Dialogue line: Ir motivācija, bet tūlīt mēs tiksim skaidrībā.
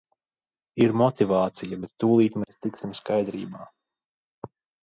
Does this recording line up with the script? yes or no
yes